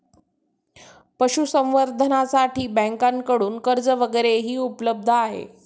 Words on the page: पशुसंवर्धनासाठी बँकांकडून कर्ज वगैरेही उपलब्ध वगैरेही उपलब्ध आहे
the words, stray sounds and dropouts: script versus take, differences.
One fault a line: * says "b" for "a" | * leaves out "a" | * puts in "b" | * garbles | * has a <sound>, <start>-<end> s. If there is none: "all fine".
* leaves out "वगैरेही उपलब्ध"